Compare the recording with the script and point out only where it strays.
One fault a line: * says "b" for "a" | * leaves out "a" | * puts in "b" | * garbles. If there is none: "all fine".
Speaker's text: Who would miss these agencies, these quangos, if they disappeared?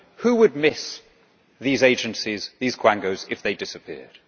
all fine